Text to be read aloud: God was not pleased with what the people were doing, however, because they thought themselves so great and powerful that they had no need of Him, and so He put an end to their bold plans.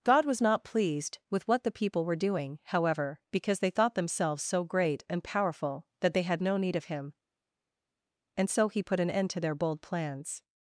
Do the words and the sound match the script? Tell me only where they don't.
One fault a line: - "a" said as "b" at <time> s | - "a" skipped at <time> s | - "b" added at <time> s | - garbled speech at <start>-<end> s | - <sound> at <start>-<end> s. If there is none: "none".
none